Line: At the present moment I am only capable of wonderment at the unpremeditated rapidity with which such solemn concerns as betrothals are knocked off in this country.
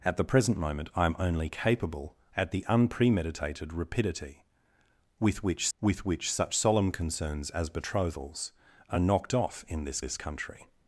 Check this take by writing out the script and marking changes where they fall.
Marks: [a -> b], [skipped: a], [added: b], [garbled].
At the present moment I am only capable [skipped: of wonderment] at the unpremeditated rapidity with which [added: with which] such solemn concerns as betrothals are knocked off in this [added: this] country.